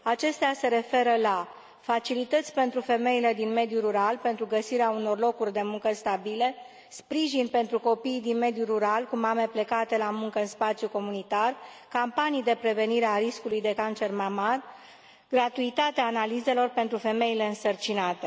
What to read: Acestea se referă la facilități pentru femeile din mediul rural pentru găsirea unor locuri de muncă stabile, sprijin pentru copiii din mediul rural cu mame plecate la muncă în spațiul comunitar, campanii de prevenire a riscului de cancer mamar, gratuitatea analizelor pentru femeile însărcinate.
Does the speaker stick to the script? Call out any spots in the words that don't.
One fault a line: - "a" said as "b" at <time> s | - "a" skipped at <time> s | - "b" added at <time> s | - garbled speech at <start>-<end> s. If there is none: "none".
none